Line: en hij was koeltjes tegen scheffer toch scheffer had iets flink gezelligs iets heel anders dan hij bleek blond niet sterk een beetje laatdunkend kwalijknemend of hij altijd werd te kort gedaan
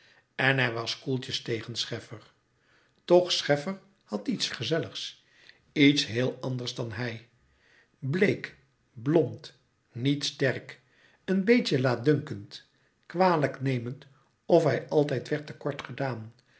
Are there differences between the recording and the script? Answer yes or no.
yes